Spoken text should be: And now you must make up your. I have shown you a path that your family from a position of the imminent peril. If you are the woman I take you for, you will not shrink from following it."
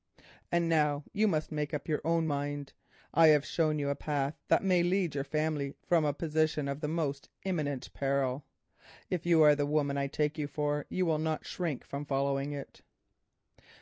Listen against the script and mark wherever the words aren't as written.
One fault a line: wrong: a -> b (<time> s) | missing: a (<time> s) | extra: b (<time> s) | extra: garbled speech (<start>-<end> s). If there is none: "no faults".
extra: own mind (2.0 s)
extra: may lead (4.6 s)
extra: most (6.9 s)